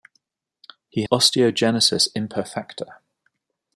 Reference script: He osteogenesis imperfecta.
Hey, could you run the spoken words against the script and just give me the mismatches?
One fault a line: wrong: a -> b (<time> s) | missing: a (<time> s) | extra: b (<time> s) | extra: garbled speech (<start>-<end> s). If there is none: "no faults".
no faults